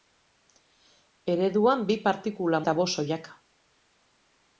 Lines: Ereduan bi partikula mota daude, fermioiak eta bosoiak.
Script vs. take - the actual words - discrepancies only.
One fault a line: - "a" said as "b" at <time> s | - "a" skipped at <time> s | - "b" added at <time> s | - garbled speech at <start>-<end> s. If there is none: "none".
- "mota daude fermioiak" skipped at 2.6 s